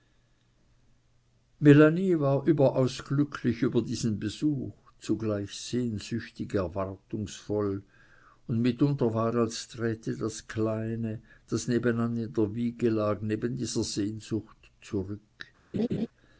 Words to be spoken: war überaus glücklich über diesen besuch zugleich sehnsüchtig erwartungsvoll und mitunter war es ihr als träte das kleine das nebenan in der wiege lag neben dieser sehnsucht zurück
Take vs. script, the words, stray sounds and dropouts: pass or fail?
fail